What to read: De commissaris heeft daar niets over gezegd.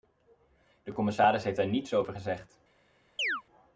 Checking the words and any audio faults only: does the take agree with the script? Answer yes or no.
no